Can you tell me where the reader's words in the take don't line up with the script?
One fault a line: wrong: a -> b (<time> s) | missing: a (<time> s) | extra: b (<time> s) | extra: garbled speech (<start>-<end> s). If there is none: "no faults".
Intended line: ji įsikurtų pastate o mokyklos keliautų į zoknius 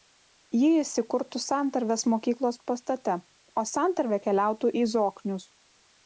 extra: santarvės mokyklos (1.4 s)
wrong: mokyklos -> santarvė (3.7 s)